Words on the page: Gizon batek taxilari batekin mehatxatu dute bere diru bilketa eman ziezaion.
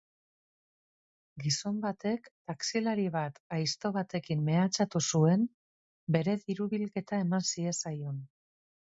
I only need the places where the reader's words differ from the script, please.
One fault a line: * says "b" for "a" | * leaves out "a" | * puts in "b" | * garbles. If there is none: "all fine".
* puts in "bat aizto"
* says "zuen" for "dute"